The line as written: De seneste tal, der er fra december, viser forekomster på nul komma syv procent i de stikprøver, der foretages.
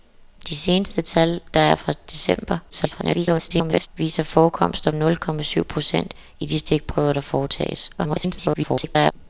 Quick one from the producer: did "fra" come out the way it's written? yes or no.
yes